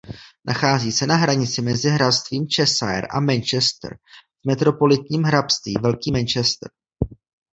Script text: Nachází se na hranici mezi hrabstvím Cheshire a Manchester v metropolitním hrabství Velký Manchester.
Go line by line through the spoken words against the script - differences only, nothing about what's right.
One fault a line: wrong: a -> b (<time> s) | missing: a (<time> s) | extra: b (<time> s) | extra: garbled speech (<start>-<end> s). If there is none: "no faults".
no faults